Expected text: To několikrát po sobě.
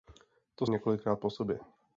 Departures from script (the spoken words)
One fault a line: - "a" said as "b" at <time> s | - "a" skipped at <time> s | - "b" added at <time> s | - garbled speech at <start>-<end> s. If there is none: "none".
none